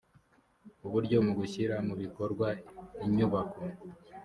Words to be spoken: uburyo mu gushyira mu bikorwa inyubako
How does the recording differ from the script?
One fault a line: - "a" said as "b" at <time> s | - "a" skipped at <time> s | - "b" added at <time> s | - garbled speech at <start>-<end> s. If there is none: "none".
none